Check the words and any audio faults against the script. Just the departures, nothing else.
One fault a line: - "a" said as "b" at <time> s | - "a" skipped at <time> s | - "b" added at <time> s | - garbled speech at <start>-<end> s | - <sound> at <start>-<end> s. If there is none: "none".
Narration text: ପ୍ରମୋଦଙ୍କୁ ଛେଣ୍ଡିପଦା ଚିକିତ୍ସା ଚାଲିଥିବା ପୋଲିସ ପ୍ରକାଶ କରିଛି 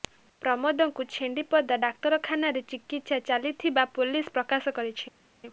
- "ଡାକ୍ତରଖାନାରେ" added at 1.8 s